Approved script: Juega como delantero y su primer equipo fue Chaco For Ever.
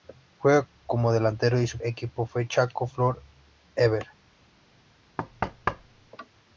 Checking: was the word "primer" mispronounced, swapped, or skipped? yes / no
yes